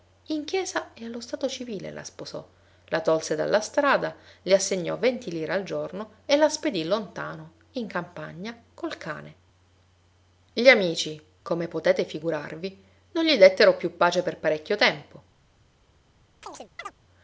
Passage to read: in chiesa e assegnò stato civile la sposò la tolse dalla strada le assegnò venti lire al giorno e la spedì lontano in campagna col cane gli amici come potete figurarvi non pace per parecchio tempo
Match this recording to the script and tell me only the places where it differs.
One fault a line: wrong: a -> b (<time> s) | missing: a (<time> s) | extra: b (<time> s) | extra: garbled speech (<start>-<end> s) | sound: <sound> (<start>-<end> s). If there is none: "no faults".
wrong: assegnò -> allo (1.1 s)
extra: gli dettero più (13.2 s)
sound: chirp (16.4-16.9 s)